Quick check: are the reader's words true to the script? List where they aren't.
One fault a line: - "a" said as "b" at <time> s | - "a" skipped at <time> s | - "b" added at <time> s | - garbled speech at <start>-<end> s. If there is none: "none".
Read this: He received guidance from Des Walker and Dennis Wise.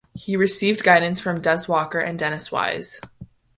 none